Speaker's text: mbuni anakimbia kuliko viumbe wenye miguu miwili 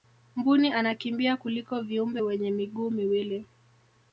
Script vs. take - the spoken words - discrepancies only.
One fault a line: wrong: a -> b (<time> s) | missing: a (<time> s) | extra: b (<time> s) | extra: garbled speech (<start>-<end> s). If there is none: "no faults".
no faults